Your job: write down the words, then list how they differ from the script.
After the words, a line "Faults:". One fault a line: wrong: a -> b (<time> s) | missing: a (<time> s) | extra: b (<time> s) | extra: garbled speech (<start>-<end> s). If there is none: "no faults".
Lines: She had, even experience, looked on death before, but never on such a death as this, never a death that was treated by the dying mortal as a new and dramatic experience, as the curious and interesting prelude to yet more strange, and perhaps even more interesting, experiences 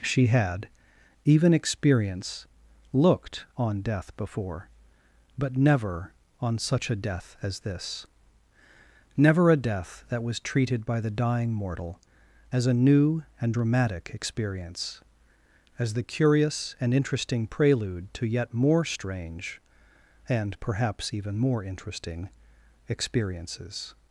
She had, even experience, looked on death before, but never on such a death as this, never a death that was treated by the dying mortal as a new and dramatic experience, as the curious and interesting prelude to yet more strange, and perhaps even more interesting, experiences
Faults:
no faults